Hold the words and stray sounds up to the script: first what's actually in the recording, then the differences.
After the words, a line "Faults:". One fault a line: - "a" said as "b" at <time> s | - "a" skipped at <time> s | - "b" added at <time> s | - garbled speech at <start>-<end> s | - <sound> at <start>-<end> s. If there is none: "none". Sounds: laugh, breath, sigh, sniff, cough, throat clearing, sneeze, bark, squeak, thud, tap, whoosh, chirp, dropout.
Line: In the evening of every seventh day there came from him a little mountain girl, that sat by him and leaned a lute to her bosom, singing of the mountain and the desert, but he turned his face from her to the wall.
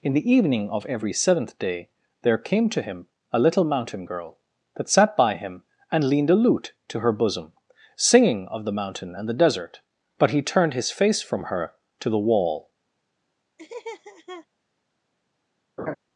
In the evening of every seventh day there came to him a little mountain girl, that sat by him and leaned a lute to her bosom, singing of the mountain and the desert, but he turned his face from her to the wall.
Faults:
- "from" said as "to" at 2.7 s
- laugh at 13.6-14.5 s
- laugh at 15.8-16.0 s